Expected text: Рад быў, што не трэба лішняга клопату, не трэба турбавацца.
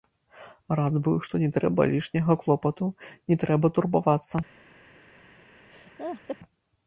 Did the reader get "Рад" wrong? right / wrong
right